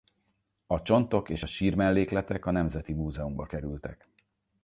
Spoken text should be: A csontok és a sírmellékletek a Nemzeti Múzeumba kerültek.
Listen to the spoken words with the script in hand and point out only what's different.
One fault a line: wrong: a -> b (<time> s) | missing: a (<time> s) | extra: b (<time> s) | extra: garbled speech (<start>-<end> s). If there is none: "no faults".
no faults